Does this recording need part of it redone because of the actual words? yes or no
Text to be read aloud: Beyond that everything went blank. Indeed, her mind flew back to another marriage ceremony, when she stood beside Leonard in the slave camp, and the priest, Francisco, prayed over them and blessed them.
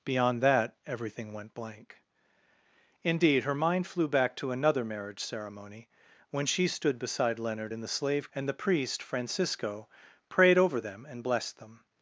yes